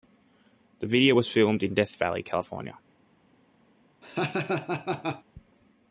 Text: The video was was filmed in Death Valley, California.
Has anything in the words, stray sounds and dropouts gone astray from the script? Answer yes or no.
yes